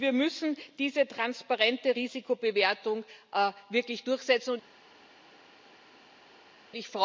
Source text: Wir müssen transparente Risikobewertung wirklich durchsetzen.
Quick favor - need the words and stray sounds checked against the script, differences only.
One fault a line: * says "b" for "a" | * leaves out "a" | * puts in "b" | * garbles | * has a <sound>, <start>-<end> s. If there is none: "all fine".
* puts in "diese"